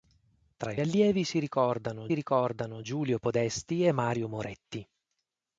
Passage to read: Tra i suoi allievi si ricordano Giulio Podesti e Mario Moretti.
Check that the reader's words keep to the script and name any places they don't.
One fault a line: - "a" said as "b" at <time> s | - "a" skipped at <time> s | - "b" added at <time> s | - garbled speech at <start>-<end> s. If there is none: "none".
- "suoi" skipped at 0.8 s
- "ricordano" added at 2.1 s